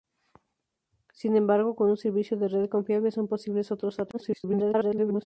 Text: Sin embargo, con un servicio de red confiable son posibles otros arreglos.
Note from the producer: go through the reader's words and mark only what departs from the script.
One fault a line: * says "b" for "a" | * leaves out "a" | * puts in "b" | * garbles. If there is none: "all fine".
* garbles